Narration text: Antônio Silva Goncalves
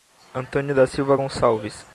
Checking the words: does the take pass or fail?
fail